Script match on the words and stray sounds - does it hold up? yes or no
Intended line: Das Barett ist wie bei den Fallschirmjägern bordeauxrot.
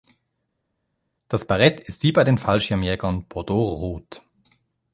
yes